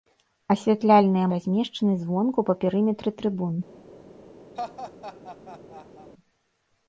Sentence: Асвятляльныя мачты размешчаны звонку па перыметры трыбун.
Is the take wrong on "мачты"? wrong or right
wrong